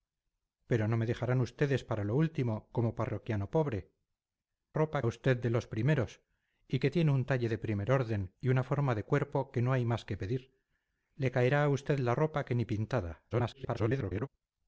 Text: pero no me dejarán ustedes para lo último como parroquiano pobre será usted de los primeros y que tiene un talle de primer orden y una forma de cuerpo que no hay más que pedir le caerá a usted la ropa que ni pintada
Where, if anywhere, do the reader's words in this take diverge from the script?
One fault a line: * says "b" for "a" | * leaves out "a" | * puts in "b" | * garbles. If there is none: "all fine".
* says "ropa" for "será"
* garbles